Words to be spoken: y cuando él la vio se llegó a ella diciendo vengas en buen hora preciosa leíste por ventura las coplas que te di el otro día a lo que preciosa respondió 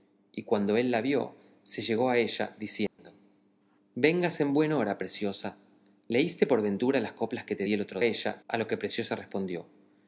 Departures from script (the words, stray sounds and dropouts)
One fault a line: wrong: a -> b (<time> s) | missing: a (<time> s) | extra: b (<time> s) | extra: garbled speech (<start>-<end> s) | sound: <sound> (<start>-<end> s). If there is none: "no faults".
sound: dropout (2.9-3.0 s)
wrong: día -> ella (8.0 s)